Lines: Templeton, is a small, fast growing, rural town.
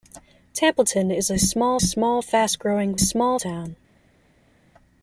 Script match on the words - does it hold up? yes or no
no